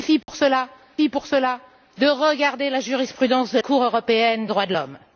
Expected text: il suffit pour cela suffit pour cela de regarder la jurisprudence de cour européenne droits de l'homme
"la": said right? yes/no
yes